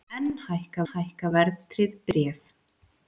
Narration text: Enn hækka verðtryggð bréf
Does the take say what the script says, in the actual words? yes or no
no